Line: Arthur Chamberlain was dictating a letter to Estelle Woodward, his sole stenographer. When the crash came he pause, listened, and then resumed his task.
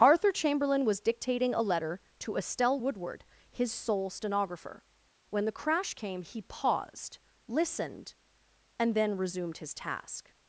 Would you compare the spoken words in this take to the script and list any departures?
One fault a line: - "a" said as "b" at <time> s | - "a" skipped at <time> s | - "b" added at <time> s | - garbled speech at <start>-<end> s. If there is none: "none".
- "pause" said as "paused" at 6.4 s